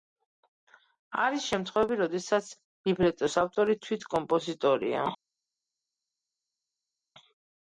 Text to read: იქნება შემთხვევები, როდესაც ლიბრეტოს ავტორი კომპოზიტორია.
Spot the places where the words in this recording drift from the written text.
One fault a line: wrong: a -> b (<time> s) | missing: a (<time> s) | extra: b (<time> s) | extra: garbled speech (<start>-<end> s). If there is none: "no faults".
wrong: იქნება -> არის (1.2 s)
extra: თვით (3.8 s)